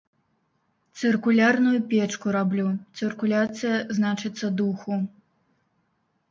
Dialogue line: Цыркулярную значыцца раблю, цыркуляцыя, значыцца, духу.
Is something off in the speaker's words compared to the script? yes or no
yes